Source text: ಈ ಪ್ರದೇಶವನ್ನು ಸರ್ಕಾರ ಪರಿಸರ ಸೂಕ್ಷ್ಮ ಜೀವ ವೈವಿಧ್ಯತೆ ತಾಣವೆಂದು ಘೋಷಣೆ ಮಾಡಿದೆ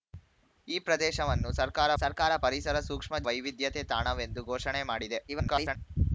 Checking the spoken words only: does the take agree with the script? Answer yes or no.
no